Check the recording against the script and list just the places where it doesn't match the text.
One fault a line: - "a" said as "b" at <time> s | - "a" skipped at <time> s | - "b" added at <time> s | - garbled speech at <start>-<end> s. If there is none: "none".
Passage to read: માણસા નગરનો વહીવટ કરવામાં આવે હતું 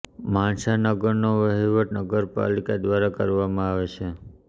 - "નગરપાલિકા દ્વારા" added at 2.0 s
- "હતું" said as "છે" at 3.9 s